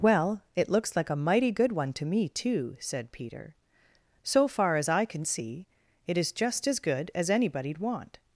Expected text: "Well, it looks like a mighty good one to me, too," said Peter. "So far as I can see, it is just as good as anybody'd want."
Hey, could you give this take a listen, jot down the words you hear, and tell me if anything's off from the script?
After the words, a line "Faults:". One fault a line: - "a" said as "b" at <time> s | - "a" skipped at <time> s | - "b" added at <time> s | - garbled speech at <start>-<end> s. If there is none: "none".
"Well, it looks like a mighty good one to me, too," said Peter. "So far as I can see, it is just as good as anybody'd want."
Faults:
none